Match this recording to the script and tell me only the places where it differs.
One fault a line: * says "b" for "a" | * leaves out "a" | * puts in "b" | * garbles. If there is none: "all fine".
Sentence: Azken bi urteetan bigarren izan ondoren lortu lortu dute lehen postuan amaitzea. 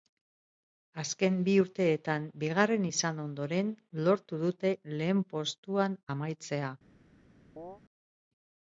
* leaves out "lortu"